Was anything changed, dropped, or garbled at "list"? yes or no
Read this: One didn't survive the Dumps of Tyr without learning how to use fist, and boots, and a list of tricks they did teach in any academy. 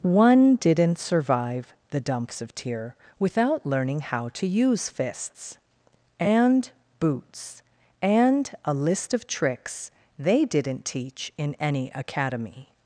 no